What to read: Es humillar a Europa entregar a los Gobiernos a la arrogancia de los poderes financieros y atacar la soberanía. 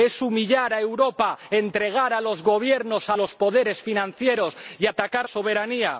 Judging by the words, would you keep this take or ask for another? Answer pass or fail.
fail